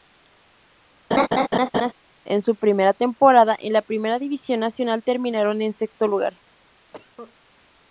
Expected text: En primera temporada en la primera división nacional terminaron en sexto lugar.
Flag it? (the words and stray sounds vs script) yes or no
yes